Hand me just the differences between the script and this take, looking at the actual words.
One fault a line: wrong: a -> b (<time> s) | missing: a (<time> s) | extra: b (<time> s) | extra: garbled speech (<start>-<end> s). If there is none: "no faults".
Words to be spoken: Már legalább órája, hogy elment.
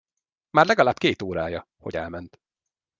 extra: két (1.0 s)